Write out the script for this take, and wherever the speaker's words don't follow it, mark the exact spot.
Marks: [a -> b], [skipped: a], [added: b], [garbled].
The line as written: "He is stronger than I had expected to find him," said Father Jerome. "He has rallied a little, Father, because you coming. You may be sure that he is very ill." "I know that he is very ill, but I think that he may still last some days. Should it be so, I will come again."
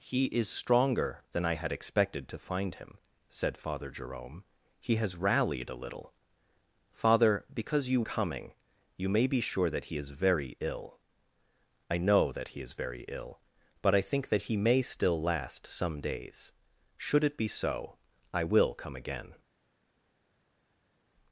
"He is stronger than I had expected to find him," said Father Jerome. "He has rallied a little, Father, because you coming. You may be sure that he is very ill." "I know that he is very ill, but I think that he may still last some days. Should it be so, I will come again."